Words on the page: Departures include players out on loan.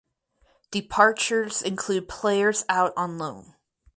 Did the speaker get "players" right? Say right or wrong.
right